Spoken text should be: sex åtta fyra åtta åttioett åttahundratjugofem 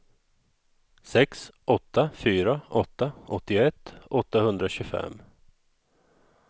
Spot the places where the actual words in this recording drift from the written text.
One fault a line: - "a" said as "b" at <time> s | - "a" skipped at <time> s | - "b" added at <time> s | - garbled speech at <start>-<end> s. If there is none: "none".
none